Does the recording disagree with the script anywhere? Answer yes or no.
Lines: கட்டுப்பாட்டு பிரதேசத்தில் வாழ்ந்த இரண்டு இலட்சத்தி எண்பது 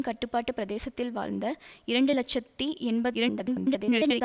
yes